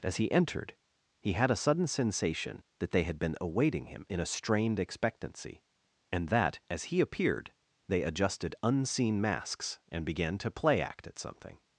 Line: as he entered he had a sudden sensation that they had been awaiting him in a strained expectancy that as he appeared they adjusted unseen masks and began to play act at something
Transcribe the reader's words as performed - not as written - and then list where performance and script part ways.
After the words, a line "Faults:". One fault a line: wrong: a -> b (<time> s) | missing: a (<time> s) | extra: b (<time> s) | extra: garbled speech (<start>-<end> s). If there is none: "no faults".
as he entered he had a sudden sensation that they had been awaiting him in a strained expectancy and that as he appeared they adjusted unseen masks and began to play act at something
Faults:
extra: and (6.1 s)